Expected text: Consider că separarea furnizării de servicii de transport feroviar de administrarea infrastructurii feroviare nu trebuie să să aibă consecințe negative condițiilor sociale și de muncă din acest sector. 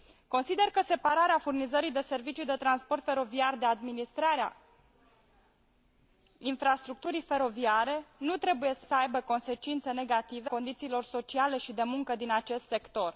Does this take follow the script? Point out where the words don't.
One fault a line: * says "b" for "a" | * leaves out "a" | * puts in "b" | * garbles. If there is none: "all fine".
all fine